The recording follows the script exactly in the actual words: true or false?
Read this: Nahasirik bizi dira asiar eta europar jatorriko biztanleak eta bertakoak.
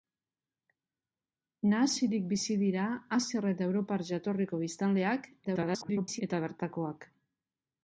false